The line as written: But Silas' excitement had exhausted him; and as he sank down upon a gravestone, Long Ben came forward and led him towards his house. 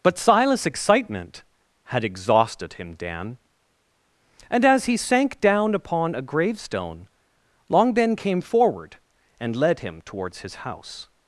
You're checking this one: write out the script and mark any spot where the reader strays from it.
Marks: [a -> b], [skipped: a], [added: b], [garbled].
But Silas' excitement had exhausted him; [added: dan] and as he sank down upon a gravestone, Long Ben came forward and led him towards his house.